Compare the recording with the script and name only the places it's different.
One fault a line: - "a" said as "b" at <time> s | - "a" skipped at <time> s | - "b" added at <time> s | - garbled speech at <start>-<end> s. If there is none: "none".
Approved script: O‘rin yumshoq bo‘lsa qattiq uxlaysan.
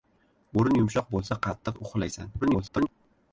- garbled speech at 2.4-2.9 s